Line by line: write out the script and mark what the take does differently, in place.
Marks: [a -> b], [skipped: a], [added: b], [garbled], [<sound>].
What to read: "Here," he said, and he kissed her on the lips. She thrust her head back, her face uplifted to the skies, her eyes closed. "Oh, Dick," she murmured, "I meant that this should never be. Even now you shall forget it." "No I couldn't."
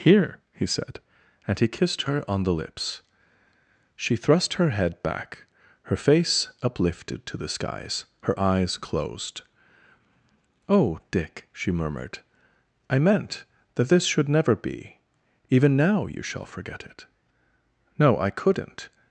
"Here," he said, and he kissed her on the lips. She thrust her head back, her face uplifted to the skies, her eyes closed. "Oh, Dick," she murmured, "I meant that this should never be. Even now you shall forget it." "No I couldn't."